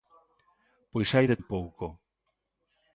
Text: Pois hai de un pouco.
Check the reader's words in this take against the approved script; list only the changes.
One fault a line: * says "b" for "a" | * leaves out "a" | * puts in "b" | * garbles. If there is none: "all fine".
all fine